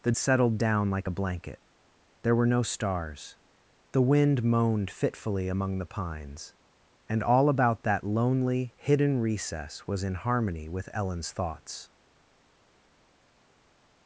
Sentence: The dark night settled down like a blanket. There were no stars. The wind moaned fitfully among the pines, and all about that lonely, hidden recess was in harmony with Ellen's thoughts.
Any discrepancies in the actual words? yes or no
yes